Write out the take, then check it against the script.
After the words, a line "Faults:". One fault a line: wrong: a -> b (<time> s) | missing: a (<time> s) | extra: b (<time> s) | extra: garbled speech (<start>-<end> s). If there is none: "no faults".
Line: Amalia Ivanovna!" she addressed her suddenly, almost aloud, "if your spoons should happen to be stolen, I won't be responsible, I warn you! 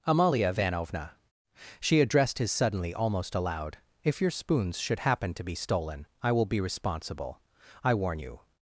Amalia Ivanovna!" she addressed his suddenly, almost aloud, "if your spoons should happen to be stolen, I will be responsible, I warn you!
Faults:
wrong: her -> his (2.4 s)
wrong: won't -> will (6.3 s)